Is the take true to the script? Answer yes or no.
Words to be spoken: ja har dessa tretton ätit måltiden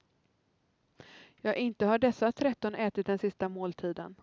no